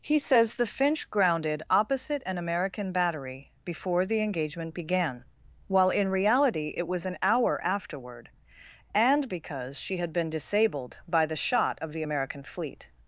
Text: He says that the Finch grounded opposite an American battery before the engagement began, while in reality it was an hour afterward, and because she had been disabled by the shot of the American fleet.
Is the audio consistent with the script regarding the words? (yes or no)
no